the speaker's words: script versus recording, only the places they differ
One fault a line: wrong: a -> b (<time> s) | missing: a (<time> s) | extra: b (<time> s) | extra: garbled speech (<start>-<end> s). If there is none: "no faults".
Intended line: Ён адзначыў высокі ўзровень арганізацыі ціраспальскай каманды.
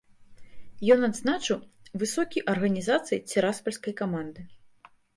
missing: ўзровень (2.5 s)